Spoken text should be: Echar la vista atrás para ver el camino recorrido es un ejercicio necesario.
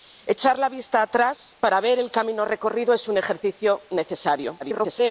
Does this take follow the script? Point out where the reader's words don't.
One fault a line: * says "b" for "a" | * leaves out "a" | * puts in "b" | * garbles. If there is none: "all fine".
* garbles